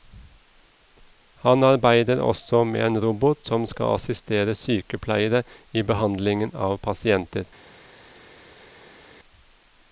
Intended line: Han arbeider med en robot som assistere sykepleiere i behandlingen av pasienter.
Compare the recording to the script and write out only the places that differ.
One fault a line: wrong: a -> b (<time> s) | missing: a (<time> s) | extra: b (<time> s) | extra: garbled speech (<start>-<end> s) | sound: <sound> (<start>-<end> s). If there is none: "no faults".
extra: også (2.3 s)
extra: skal (3.7 s)